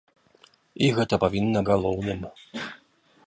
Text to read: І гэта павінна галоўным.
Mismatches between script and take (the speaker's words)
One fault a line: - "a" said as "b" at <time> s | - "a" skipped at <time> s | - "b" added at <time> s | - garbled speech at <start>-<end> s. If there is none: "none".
none